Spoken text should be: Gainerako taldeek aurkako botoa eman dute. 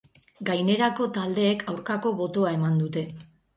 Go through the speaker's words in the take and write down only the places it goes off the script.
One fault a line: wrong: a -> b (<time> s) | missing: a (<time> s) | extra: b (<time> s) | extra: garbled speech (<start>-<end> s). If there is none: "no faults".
no faults